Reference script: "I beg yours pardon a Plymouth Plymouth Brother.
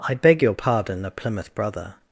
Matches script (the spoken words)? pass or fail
fail